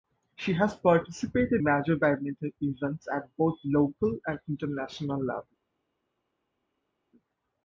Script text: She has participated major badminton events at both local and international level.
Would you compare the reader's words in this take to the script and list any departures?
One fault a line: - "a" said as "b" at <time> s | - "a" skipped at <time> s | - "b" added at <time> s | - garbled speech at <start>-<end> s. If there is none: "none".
none